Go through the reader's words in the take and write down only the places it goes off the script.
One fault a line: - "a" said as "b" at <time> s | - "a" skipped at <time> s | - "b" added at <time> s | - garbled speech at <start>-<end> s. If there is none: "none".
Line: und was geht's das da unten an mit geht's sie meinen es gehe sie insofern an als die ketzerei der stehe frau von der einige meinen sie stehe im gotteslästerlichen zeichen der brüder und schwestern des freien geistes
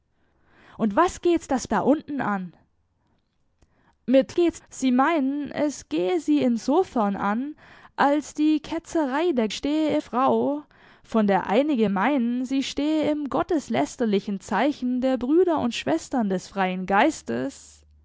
none